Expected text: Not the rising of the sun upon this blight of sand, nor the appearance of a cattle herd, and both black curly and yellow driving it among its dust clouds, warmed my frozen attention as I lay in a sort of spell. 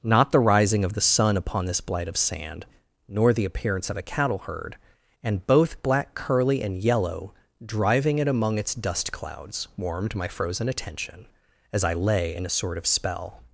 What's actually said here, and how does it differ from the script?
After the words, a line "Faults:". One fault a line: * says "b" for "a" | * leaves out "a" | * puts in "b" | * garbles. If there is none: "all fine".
Not the rising of the sun upon this blight of sand, nor the appearance of a cattle herd, and both black curly and yellow driving it among its dust clouds, warmed my frozen attention as I lay in a sort of spell.
Faults:
all fine